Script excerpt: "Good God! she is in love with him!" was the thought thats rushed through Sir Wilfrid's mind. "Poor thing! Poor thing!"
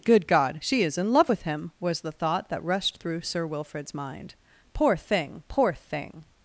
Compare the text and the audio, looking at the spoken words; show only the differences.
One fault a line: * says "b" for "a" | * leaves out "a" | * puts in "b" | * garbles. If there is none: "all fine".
* says "that" for "thats"